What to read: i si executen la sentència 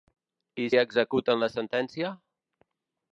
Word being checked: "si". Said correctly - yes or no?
no